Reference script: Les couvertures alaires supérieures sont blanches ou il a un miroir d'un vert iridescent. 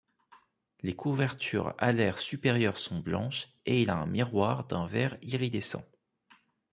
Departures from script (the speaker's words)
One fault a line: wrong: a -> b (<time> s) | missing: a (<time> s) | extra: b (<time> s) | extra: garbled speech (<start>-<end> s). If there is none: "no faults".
wrong: ou -> et (3.6 s)